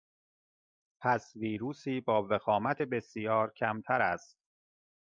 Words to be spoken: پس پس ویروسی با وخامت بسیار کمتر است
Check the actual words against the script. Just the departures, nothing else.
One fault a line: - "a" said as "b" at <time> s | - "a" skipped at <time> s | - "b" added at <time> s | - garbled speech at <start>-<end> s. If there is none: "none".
- "پس" skipped at 1.3 s